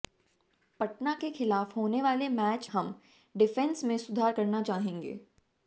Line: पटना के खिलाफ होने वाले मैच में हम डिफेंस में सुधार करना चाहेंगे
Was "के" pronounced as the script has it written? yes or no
yes